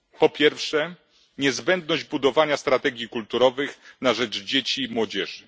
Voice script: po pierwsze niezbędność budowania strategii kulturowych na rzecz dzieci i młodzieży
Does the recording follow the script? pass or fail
pass